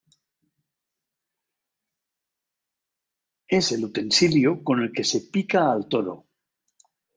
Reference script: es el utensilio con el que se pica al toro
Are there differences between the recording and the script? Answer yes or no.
no